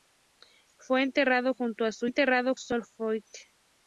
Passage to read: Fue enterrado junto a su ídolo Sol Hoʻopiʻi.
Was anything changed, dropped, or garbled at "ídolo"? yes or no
yes